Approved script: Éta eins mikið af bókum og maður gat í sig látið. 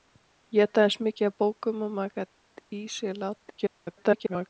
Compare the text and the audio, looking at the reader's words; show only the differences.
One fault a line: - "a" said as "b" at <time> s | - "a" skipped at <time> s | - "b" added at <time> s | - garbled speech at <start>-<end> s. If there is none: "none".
- garbled speech at 3.4-4.5 s